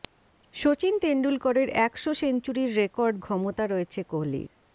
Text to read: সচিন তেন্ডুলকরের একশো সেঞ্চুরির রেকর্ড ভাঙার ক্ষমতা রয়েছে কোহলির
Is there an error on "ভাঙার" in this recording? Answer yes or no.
yes